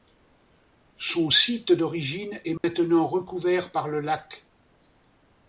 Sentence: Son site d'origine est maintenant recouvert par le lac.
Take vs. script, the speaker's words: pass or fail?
pass